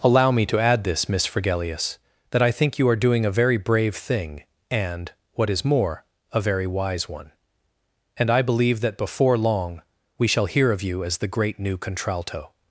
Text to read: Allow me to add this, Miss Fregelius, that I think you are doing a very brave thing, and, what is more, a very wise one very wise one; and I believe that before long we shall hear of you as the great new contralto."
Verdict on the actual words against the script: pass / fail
fail